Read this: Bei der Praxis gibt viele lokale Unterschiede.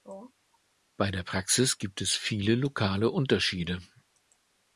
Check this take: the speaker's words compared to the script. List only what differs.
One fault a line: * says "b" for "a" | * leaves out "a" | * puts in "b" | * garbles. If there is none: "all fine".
* puts in "es"